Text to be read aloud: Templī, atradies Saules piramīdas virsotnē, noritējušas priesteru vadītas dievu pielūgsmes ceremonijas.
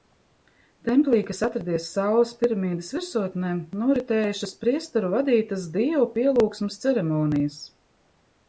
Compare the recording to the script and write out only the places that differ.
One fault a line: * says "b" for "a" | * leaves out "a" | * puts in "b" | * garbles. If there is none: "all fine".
* puts in "kas"